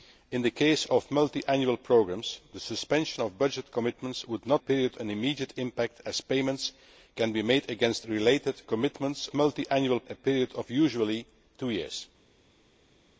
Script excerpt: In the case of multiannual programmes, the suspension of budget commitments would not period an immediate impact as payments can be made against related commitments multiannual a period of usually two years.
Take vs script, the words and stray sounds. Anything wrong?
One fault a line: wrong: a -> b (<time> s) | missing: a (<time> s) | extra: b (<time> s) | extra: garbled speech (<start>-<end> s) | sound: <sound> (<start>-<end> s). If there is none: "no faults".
no faults